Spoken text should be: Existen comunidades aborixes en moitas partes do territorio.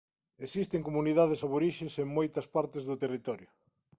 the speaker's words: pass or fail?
pass